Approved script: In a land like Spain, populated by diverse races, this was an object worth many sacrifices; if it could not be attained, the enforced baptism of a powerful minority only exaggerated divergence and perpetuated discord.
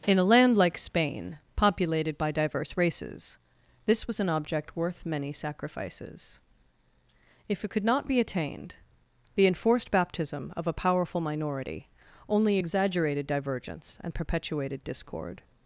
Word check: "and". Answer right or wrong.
right